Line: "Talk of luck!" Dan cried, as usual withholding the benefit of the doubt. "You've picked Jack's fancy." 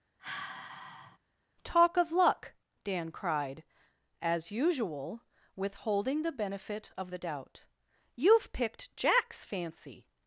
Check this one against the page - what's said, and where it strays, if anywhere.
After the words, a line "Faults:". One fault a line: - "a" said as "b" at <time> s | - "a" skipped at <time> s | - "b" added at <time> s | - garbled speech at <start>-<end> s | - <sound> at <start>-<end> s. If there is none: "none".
"Talk of luck!" Dan cried, as usual withholding the benefit of the doubt. "You've picked Jack's fancy."
Faults:
- sigh at 0.2-1.2 s